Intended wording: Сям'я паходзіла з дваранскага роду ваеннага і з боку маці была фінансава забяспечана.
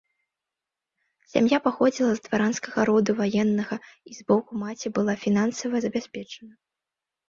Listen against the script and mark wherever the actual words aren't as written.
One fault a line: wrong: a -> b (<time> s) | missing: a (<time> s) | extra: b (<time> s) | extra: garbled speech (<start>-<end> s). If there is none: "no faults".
no faults